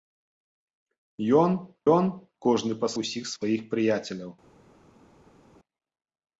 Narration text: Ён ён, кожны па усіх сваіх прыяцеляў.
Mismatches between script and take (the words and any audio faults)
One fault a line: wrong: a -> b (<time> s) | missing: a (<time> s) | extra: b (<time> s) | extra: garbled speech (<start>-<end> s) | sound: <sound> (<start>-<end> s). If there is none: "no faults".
no faults